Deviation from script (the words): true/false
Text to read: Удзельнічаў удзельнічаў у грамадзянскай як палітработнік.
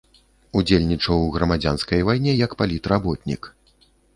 true